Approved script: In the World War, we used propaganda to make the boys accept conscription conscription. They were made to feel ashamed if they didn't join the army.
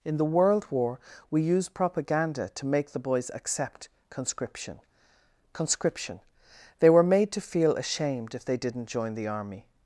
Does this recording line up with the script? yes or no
yes